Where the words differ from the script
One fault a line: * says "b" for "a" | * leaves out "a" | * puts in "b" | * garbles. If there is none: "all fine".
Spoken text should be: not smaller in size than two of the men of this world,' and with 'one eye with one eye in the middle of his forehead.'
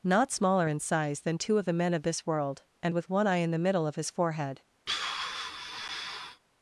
* leaves out "with one eye"